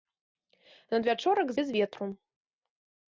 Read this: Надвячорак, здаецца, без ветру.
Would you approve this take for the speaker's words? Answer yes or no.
no